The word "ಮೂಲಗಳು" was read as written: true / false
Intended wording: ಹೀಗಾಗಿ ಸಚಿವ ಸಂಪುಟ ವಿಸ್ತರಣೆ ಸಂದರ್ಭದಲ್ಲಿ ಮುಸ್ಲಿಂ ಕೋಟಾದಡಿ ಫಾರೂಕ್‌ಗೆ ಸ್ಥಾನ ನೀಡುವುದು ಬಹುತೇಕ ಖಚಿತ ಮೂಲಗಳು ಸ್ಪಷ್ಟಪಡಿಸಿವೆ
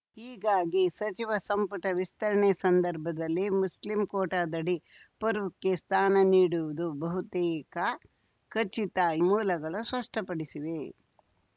true